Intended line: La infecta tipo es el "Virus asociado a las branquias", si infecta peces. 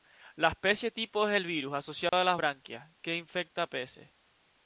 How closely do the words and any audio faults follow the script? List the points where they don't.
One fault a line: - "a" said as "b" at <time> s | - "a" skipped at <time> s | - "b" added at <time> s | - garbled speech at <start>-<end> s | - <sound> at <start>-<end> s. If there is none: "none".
- "infecta" said as "especie" at 0.5 s
- dropout at 2.1-2.1 s
- "si" said as "que" at 3.0 s